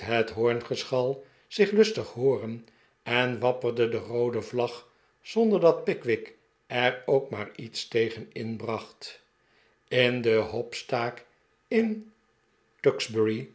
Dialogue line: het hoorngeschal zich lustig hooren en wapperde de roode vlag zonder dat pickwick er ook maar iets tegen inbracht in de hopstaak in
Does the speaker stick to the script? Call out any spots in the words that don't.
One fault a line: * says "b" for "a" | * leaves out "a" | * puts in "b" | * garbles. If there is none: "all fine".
all fine